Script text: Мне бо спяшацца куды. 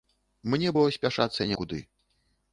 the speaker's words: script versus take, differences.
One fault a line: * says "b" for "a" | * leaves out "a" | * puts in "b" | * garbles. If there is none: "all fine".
all fine